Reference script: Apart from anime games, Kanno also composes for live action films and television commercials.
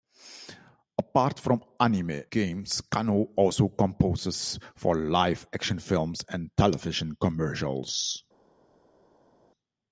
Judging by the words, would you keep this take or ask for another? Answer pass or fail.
pass